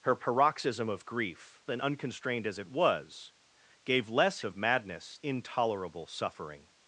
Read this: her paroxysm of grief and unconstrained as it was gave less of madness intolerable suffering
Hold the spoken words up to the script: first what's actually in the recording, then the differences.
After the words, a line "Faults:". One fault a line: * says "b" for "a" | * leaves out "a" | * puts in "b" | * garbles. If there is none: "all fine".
her paroxysm of grief and unconstrained as it was gave less of madness intolerable suffering
Faults:
all fine